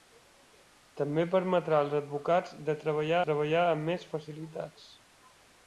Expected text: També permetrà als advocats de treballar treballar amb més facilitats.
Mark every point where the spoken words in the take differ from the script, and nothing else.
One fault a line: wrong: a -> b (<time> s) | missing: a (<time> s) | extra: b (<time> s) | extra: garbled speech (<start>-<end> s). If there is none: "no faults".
no faults